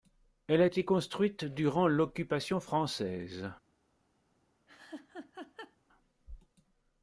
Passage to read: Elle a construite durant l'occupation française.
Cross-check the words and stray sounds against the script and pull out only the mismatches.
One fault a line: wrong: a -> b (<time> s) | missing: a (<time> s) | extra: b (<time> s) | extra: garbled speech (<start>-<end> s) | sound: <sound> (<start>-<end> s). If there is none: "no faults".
extra: été (0.6 s)
sound: laugh (4.7-5.8 s)